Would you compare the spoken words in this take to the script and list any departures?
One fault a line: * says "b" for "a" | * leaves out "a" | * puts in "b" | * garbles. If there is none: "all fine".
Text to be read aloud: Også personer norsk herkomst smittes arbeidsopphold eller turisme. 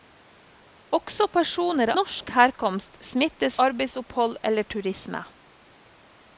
all fine